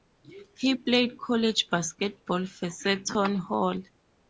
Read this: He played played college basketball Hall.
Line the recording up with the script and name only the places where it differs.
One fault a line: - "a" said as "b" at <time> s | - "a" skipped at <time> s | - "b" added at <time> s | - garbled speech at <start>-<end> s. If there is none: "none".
- "played" skipped at 1.2 s
- "for Seton" added at 2.5 s